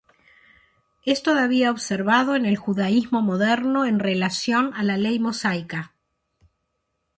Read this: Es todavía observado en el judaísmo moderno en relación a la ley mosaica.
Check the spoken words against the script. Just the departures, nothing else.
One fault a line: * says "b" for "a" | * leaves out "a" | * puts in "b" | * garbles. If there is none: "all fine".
all fine